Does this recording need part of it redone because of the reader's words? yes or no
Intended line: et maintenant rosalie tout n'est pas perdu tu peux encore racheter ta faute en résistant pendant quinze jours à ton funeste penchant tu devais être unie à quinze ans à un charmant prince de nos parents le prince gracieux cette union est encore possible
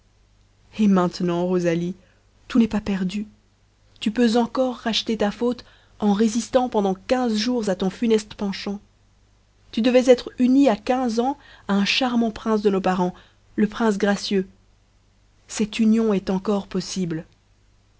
no